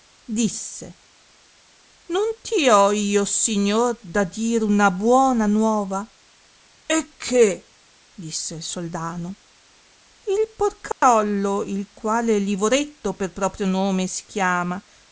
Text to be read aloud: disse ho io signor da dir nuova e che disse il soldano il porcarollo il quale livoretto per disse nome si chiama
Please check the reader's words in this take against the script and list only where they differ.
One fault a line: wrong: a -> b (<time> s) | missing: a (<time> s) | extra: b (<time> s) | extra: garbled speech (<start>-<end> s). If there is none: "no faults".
extra: non ti (2.1 s)
extra: una buona (4.6 s)
wrong: disse -> proprio (13.3 s)